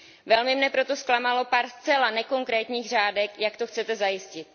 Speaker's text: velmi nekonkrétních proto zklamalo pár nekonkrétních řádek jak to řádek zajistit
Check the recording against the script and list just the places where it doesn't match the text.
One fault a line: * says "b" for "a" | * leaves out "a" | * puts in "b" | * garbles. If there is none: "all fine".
* says "mne" for "nekonkrétních"
* puts in "zcela"
* says "chcete" for "řádek"